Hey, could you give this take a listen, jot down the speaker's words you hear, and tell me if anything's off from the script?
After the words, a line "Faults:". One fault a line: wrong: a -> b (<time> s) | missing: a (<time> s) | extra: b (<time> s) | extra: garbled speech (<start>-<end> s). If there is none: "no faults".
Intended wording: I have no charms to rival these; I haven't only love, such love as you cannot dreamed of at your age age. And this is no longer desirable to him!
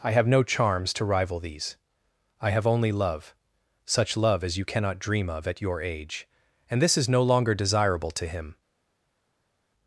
I have no charms to rival these; I have only love, such love as you cannot dream of at your age. And this is no longer desirable to him!
Faults:
wrong: haven't -> have (2.5 s)
wrong: dreamed -> dream (5.0 s)
missing: age (6.3 s)